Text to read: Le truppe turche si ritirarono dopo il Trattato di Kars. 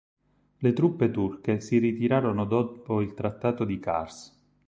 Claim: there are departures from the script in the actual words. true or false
false